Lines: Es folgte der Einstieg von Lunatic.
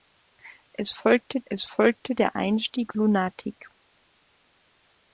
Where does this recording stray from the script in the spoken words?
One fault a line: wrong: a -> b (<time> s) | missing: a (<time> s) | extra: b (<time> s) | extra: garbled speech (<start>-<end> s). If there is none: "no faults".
extra: es folgte (1.5 s)
missing: von (2.9 s)